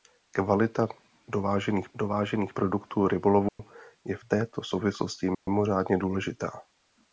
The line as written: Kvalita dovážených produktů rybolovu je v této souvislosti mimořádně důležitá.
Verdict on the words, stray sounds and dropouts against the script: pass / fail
fail